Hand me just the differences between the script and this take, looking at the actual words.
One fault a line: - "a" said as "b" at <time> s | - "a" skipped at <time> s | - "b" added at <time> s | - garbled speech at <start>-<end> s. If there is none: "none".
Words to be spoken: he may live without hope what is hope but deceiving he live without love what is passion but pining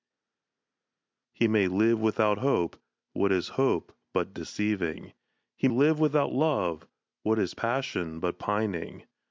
none